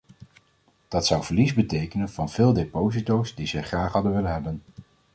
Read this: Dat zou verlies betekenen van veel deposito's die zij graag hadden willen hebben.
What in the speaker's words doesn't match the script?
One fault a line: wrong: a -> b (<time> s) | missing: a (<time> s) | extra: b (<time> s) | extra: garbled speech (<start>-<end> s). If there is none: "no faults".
no faults